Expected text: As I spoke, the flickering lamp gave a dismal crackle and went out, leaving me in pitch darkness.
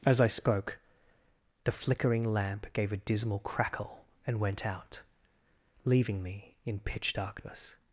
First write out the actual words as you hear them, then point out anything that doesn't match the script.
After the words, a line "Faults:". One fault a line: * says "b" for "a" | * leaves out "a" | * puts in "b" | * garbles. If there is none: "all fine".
As I spoke, the flickering lamp gave a dismal crackle and went out, leaving me in pitch darkness.
Faults:
all fine